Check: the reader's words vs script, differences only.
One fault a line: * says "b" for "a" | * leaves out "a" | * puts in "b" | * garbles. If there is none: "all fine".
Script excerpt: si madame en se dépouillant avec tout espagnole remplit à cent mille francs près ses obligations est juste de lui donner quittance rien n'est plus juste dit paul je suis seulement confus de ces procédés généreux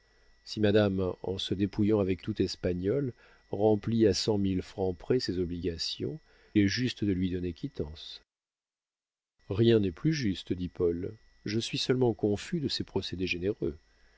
all fine